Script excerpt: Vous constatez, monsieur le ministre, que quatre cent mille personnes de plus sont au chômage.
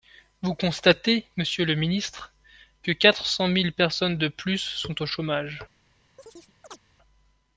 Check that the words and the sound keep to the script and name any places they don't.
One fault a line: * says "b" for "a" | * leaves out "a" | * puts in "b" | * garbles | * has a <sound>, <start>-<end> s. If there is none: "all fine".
* has a chirp, 6.2-6.8 s